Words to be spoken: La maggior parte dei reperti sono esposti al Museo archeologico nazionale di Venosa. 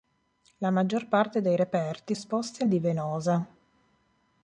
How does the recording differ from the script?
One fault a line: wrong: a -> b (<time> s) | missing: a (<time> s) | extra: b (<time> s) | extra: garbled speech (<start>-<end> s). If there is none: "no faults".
missing: sono (2.1 s)
missing: Museo archeologico nazionale (2.7 s)